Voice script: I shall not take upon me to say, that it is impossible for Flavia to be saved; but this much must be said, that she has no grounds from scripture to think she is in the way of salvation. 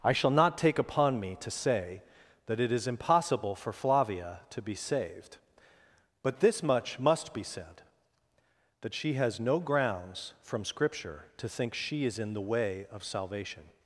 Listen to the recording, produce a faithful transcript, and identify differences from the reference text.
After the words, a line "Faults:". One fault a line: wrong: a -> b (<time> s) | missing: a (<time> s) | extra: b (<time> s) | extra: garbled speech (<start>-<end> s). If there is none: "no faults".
I shall not take upon me to say, that it is impossible for Flavia to be saved; but this much must be said, that she has no grounds from scripture to think she is in the way of salvation.
Faults:
no faults